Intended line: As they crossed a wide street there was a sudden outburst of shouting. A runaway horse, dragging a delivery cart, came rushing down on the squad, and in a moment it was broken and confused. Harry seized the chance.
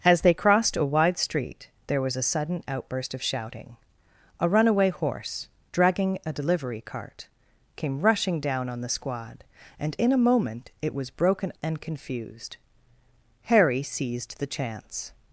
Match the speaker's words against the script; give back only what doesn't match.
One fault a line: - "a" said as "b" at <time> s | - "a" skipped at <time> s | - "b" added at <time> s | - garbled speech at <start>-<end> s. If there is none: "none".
none